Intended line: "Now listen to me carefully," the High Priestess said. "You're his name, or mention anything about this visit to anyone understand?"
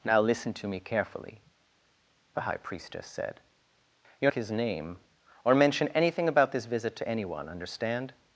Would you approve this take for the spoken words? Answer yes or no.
yes